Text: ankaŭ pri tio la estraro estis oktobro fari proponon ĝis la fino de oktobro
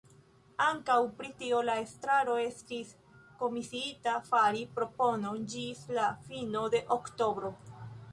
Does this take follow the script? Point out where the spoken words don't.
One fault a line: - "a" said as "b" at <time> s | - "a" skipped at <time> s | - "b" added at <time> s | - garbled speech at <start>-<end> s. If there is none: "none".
- "oktobro" said as "komisiita" at 3.4 s